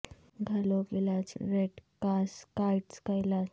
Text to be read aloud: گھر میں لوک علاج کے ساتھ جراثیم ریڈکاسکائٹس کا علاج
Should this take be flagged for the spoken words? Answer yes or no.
yes